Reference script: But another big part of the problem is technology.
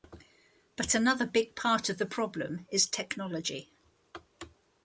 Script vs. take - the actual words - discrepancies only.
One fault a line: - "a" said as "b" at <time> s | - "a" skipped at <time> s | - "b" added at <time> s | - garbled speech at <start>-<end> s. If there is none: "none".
none